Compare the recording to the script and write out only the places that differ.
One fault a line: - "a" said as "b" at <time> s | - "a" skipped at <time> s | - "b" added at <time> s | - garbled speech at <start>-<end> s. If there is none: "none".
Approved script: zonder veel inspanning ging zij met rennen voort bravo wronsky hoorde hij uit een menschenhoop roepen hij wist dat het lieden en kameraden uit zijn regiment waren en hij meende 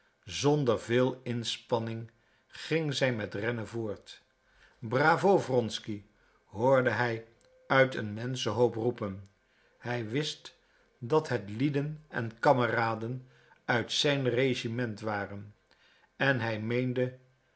none